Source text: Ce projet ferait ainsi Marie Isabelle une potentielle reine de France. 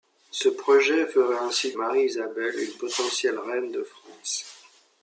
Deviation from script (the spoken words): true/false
false